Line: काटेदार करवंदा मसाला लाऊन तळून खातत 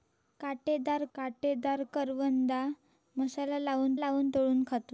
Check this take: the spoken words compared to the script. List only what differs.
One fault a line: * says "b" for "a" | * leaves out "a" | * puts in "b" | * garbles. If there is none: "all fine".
* puts in "काटेदार"
* puts in "लाऊन"